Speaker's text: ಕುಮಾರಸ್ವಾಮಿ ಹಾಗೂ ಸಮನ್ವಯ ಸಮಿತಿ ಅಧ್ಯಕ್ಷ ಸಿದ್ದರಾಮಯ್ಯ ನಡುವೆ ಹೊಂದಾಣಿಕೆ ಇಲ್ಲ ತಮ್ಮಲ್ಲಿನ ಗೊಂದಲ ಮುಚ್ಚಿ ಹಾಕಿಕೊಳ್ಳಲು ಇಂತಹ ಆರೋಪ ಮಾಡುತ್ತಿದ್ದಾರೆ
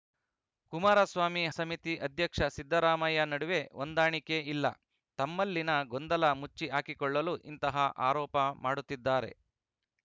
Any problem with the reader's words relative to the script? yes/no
yes